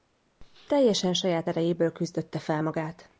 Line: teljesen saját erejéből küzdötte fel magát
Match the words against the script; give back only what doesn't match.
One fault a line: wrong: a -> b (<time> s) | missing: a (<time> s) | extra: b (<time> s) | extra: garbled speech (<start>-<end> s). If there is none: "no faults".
no faults